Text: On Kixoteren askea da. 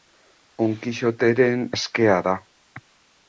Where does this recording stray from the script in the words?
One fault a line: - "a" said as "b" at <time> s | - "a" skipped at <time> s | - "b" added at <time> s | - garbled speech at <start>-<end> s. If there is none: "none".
none